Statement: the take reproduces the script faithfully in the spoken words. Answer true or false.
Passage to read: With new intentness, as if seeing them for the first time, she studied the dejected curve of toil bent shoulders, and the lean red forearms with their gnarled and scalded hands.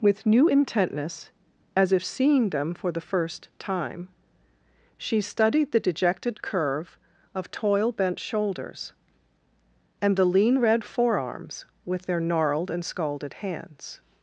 true